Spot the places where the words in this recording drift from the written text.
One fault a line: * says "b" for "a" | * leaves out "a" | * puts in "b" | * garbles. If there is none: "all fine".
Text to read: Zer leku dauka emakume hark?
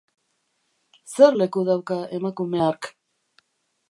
all fine